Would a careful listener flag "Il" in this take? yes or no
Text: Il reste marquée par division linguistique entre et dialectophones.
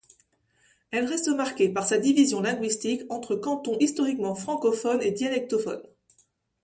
yes